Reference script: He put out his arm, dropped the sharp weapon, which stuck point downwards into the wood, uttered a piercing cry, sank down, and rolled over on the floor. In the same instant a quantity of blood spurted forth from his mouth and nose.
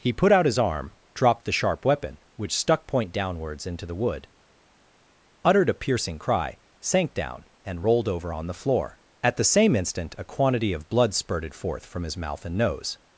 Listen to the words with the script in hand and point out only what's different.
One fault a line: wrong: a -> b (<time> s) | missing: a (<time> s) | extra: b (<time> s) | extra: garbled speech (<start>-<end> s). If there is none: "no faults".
wrong: In -> At (9.2 s)